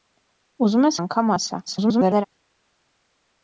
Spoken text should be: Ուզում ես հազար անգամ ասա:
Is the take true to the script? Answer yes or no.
no